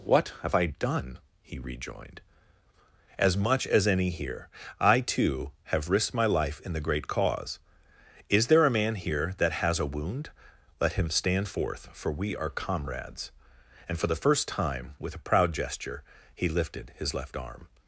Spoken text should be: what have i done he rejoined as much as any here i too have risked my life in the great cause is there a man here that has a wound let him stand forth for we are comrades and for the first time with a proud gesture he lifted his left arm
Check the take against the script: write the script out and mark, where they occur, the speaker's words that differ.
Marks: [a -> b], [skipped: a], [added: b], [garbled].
what have i done he rejoined as much as any here i too have risked my life in the great cause is there a man here that has a wound let him stand forth for we are comrades and for the first time with a proud gesture he lifted his left arm